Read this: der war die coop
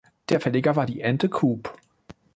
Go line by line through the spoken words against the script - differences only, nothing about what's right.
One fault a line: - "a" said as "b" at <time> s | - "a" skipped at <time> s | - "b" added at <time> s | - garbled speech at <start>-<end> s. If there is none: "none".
- "verleger" added at 0.4 s
- "ente" added at 1.0 s